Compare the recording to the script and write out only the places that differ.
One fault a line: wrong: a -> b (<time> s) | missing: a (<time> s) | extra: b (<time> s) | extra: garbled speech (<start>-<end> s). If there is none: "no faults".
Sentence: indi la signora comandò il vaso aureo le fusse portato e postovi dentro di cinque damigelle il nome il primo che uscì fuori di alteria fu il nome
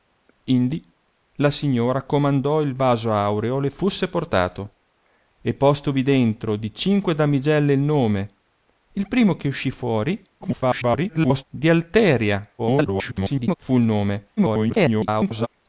extra: garbled speech (10.4-11.4 s)
extra: garbled speech (12.6-13.6 s)
extra: garbled speech (14.4-15.5 s)